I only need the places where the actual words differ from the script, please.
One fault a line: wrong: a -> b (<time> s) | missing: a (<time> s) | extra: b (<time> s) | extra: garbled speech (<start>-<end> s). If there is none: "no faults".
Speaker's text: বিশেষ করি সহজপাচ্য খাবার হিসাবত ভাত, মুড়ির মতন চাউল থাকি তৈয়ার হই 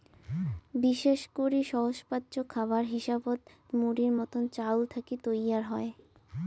missing: ভাত (3.4 s)